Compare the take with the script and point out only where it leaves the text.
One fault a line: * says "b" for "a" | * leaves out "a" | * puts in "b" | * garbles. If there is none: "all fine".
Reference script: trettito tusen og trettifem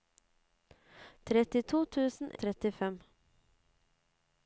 all fine